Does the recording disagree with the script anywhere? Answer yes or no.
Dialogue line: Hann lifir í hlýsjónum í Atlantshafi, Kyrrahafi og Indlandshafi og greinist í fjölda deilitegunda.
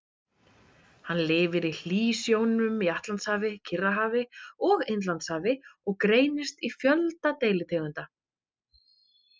no